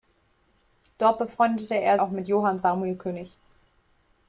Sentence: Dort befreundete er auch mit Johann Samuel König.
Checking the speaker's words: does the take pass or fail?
pass